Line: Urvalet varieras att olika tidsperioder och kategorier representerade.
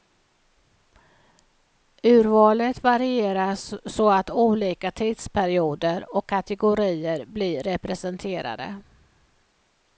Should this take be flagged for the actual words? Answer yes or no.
yes